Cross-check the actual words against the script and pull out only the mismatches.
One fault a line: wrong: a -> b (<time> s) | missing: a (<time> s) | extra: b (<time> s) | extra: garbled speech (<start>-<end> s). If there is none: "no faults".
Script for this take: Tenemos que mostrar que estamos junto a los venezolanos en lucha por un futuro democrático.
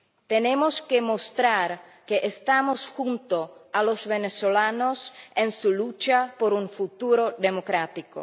extra: su (5.5 s)